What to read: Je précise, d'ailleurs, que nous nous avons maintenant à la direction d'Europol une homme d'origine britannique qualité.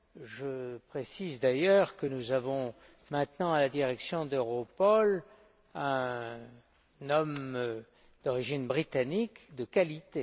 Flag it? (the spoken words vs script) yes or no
yes